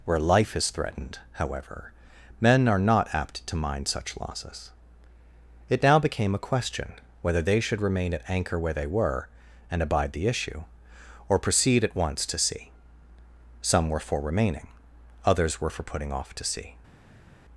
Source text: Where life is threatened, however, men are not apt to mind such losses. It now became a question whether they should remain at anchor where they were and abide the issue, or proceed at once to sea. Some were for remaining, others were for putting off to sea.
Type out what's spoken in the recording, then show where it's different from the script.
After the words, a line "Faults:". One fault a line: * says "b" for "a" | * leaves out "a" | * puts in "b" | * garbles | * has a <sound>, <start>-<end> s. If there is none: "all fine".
Where life is threatened, however, men are not apt to mind such losses. It now became a question whether they should remain at anchor where they were and abide the issue, or proceed at once to sea. Some were for remaining, others were for putting off to sea.
Faults:
all fine